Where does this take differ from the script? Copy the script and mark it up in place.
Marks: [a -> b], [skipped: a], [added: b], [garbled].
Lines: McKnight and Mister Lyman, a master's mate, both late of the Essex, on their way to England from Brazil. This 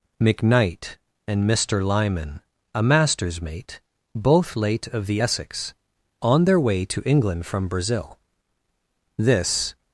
McKnight and Mister Lyman, a master's mate, both late of the Essex, on their way to England from Brazil. This